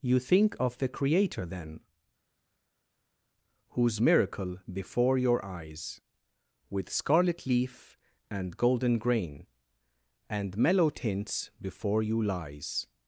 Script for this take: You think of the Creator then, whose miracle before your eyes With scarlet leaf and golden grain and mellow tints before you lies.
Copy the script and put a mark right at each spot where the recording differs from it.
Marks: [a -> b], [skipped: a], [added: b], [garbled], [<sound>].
You think of the Creator then, whose miracle before your eyes With scarlet leaf and golden grain and mellow tints before you lies.